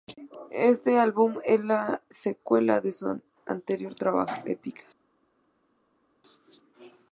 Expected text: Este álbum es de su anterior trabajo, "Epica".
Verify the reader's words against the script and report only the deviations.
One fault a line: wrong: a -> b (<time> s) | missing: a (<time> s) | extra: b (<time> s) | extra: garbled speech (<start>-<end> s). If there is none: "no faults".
extra: la secuela (1.6 s)